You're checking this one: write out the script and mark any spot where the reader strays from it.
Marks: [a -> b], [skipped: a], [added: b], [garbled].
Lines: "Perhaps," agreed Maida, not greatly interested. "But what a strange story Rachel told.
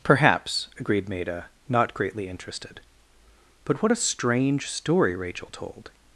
"Perhaps," agreed Maida, not greatly interested. "But what a strange story Rachel told.